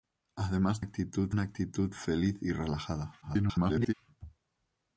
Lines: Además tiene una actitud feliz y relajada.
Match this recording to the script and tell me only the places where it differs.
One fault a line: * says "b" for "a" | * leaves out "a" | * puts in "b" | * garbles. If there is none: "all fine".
* says "actitud" for "tiene"
* garbles